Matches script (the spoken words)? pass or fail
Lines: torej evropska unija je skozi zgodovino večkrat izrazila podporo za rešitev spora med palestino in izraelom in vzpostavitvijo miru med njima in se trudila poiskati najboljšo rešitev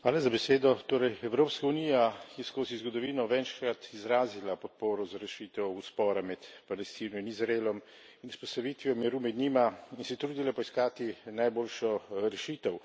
pass